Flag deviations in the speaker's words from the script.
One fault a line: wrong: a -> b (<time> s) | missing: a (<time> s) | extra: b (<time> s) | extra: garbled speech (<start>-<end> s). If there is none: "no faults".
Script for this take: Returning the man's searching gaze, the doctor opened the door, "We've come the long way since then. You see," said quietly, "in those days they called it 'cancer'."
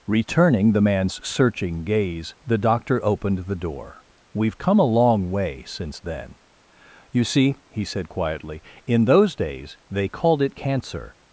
wrong: the -> a (4.8 s)
extra: he (7.7 s)